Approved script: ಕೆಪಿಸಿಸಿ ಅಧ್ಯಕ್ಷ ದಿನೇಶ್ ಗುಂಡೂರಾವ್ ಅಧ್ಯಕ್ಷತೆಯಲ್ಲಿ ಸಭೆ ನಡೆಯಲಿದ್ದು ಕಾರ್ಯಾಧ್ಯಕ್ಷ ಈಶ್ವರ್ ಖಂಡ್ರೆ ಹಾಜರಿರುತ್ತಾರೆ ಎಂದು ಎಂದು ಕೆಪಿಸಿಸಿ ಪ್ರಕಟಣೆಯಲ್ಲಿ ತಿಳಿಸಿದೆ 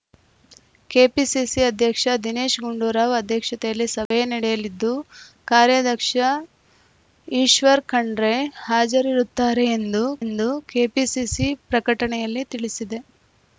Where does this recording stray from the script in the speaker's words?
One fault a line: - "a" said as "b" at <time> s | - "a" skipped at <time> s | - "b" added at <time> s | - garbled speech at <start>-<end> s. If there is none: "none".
none